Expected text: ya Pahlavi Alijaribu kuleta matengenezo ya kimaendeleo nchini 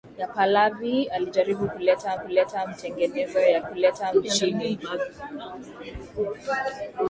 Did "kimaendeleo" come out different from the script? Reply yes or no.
yes